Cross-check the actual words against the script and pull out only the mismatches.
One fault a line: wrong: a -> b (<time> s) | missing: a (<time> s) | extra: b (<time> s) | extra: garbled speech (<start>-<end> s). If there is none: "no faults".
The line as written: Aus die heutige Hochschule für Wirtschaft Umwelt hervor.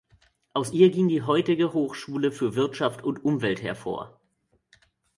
extra: ihr ging (0.7 s)
extra: und (3.0 s)